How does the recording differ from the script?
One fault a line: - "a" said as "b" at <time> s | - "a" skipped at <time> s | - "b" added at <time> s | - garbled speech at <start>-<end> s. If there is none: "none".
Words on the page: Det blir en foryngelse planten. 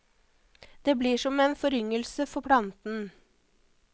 - "som" added at 1.2 s
- "for" added at 2.3 s